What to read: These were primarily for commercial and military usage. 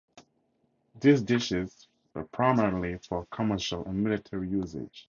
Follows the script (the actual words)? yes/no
no